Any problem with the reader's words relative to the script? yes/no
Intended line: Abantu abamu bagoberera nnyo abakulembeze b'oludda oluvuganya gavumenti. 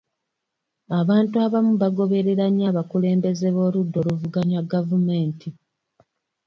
no